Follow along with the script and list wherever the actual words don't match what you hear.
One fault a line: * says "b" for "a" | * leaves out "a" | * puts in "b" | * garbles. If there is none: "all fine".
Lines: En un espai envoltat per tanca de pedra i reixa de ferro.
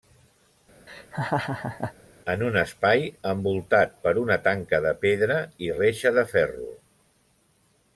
* puts in "una"